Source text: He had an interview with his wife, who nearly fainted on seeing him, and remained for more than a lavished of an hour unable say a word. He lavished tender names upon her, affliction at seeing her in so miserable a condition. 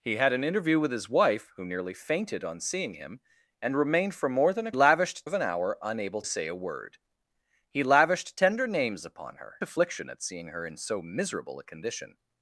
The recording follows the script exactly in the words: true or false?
true